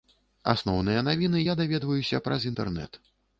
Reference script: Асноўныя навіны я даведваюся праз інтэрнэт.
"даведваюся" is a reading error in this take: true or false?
false